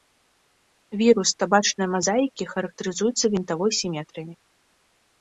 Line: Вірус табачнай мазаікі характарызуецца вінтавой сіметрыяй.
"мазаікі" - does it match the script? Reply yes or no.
yes